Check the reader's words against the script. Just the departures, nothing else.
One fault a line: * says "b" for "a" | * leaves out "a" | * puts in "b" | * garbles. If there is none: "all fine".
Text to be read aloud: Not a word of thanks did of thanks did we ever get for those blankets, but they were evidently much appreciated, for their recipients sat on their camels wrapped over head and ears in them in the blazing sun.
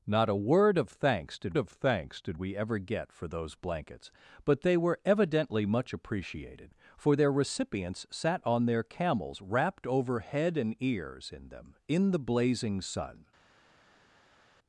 all fine